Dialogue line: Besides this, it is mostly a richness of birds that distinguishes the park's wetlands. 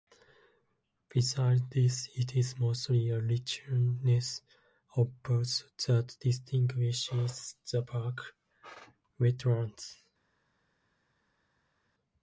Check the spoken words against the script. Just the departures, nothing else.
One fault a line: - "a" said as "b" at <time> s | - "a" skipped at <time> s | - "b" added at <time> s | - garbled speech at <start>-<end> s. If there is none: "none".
none